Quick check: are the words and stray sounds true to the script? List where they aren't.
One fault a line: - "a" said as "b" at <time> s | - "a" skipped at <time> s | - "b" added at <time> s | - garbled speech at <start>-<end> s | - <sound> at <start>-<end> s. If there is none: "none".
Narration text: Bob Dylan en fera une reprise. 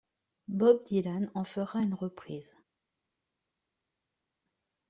none